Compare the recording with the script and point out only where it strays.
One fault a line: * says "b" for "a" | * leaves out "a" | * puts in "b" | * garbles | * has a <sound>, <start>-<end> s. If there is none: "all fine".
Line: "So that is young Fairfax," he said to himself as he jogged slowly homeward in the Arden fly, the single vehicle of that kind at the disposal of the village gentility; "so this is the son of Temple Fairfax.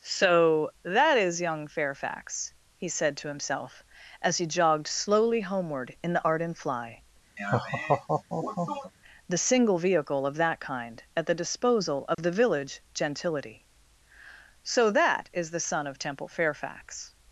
* has a laugh, 7.4-8.9 s
* has a dropout, 12.1-12.2 s
* says "that" for "this"